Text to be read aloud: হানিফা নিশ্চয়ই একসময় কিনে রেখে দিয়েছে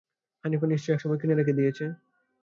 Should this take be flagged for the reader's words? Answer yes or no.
no